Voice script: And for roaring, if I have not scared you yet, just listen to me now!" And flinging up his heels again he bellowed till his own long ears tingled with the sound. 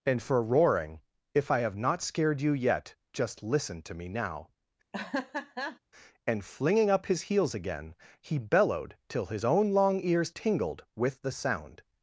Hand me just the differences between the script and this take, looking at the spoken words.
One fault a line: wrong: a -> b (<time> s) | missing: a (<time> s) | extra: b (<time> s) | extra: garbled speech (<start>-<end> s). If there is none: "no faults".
no faults